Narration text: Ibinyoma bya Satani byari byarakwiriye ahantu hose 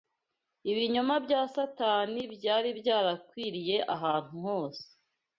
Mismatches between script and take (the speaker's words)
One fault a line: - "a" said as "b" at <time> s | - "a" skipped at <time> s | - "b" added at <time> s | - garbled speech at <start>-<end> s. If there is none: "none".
none